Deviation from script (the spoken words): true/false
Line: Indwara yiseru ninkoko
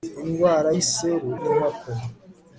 false